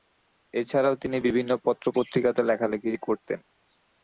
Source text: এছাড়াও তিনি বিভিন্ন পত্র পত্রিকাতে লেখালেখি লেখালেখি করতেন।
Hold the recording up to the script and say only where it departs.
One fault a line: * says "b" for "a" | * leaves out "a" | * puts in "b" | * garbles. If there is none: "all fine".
* leaves out "লেখালেখি"